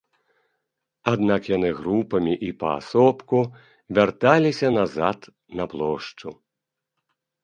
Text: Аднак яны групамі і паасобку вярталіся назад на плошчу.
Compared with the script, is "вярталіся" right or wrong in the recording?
right